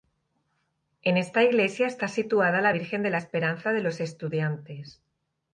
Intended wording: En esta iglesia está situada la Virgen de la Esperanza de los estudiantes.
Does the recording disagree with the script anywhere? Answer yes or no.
no